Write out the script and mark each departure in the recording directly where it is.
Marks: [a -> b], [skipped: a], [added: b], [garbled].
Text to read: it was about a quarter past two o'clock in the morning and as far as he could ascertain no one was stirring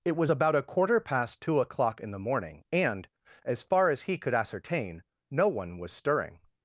it was about a quarter past two o'clock in the morning and as far as he could ascertain no one was stirring